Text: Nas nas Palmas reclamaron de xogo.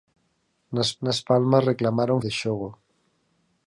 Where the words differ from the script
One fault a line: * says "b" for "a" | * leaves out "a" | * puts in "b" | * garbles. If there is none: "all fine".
all fine